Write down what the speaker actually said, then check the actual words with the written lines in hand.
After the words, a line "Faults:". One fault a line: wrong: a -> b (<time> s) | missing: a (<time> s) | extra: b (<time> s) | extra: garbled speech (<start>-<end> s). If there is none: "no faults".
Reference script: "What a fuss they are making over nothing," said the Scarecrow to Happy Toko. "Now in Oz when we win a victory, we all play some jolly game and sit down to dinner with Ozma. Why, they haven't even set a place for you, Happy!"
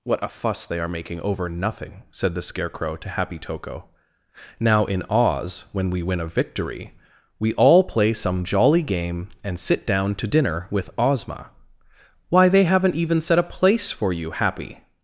"What a fuss they are making over nothing," said the Scarecrow to Happy Toko. "Now in Oz when we win a victory, we all play some jolly game and sit down to dinner with Ozma. Why, they haven't even set a place for you, Happy!"
Faults:
no faults